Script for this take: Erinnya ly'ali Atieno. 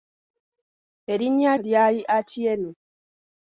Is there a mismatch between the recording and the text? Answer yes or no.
no